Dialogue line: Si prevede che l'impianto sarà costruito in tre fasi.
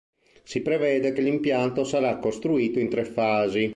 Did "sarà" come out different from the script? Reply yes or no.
no